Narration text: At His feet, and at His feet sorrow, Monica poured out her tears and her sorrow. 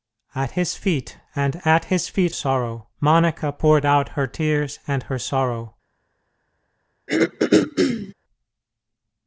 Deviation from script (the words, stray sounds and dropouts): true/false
true